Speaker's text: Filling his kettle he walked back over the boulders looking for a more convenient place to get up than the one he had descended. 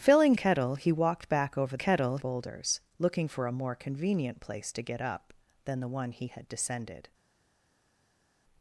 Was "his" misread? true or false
true